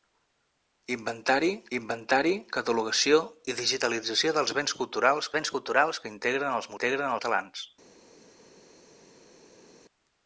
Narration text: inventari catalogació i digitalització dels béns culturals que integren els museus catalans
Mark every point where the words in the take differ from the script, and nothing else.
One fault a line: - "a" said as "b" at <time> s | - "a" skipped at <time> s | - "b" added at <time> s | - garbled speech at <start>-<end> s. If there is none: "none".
- "inventari" added at 1.8 s
- "béns culturals" added at 5.4 s
- "museus" said as "integren" at 6.7 s